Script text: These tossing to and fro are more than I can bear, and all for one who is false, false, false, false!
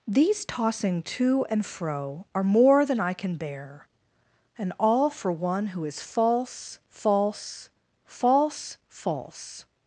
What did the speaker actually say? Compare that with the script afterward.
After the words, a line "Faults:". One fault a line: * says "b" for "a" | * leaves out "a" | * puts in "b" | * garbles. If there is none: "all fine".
These tossing to and fro are more than I can bear, and all for one who is false, false, false, false!
Faults:
all fine